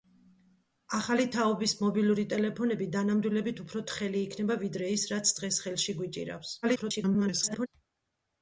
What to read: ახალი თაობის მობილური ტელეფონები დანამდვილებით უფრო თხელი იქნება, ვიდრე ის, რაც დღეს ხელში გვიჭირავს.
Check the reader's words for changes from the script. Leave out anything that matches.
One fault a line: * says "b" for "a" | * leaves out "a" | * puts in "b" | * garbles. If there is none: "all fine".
* garbles